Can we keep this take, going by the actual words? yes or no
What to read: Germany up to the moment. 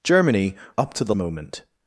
yes